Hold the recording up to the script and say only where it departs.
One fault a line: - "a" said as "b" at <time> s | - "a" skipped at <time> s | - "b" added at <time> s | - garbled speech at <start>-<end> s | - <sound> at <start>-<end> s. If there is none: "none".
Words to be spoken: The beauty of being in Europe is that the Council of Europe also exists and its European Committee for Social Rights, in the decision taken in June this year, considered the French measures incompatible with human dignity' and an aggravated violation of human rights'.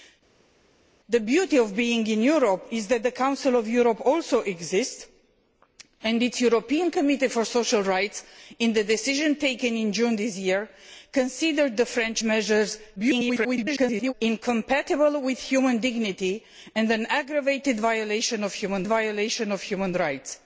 - garbled speech at 13.0-14.1 s
- "violation of human" added at 18.9 s